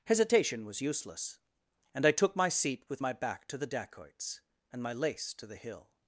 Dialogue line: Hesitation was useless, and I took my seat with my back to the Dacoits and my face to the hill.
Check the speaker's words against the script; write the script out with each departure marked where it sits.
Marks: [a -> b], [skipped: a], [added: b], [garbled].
Hesitation was useless, and I took my seat with my back to the Dacoits and my [face -> lace] to the hill.